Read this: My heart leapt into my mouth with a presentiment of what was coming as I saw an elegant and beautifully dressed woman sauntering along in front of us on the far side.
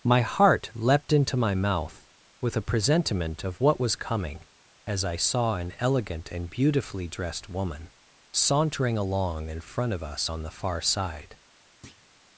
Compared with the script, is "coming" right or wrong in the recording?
right